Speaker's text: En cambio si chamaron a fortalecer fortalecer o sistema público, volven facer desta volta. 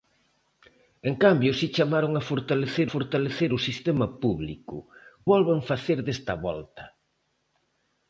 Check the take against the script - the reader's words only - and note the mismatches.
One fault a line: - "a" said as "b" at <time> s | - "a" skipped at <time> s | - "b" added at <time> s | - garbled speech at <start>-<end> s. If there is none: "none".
none